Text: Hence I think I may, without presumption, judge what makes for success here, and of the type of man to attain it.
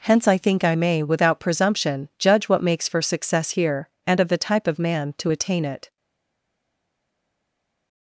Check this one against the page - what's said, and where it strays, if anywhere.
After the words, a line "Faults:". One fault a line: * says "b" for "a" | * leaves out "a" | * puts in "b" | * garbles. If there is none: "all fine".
Hence I think I may, without presumption, judge what makes for success here, and of the type of man to attain it.
Faults:
all fine